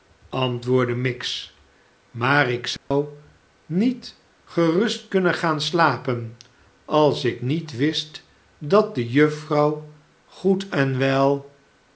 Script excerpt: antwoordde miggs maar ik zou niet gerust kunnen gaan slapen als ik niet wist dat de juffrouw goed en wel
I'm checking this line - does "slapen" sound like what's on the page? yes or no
yes